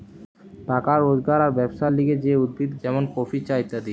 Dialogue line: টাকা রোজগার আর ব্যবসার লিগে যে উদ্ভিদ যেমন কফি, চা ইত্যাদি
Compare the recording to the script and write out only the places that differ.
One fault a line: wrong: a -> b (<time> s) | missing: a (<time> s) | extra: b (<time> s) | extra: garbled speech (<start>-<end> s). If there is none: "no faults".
no faults